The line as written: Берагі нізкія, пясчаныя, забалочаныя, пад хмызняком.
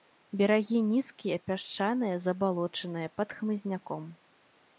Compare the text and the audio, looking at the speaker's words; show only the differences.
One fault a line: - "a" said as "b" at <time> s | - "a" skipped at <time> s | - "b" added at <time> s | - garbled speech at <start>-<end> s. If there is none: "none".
none